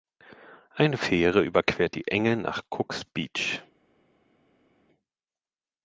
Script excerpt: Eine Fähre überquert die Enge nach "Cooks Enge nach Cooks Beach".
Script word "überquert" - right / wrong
right